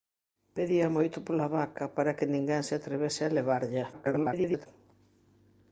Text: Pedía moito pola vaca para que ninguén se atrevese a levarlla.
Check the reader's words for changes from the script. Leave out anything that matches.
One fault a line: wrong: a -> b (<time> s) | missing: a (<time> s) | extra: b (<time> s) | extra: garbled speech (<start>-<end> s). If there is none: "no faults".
extra: garbled speech (3.9-4.7 s)